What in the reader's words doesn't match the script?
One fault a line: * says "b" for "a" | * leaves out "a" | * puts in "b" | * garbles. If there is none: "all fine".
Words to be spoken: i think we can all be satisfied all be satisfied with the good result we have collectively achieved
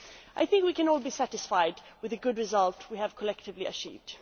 * leaves out "all be satisfied"